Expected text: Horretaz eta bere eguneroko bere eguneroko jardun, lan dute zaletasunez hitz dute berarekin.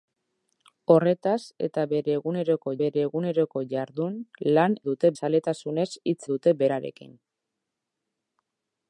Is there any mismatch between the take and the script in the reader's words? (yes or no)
no